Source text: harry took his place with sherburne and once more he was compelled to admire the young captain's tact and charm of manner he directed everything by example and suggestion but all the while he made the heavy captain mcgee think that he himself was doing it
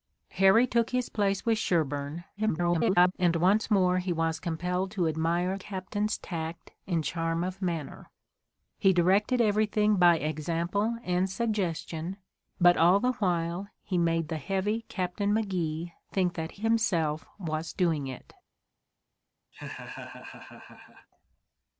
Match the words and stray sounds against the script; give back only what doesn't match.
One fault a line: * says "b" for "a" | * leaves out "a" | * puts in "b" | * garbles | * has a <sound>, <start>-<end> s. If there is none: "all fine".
* garbles
* leaves out "the young"
* leaves out "he"
* has a laugh, 19.5-21.1 s